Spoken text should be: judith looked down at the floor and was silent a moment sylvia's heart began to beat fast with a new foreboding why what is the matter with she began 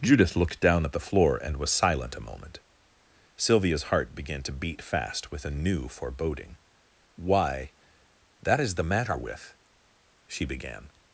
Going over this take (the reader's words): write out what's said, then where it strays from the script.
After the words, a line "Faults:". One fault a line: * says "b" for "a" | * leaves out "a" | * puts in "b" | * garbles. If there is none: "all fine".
judith looked down at the floor and was silent a moment sylvia's heart began to beat fast with a new foreboding why that is the matter with she began
Faults:
* says "that" for "what"